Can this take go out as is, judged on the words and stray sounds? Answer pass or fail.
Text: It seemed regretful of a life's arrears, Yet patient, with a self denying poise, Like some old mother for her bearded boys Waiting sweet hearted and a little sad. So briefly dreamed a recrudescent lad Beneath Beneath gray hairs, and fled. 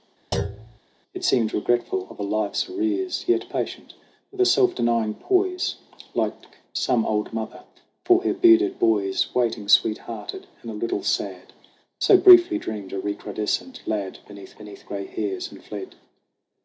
fail